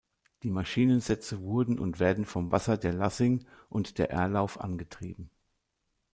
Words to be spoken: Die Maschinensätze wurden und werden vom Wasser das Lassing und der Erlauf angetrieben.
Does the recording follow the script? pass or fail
fail